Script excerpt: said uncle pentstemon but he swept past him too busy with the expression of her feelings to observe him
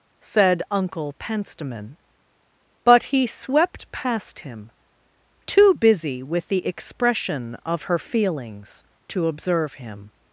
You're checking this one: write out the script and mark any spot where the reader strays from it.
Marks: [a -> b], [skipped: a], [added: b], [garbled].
said uncle pentstemon but he swept past him too busy with the expression of her feelings to observe him